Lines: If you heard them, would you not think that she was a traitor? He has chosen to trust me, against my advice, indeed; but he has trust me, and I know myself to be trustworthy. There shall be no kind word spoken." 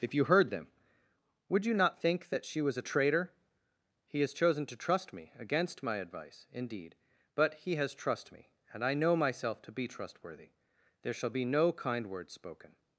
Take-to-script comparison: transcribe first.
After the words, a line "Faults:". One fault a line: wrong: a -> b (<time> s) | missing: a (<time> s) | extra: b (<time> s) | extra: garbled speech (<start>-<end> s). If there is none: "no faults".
If you heard them, would you not think that she was a traitor? He has chosen to trust me, against my advice, indeed; but he has trust me, and I know myself to be trustworthy. There shall be no kind word spoken."
Faults:
no faults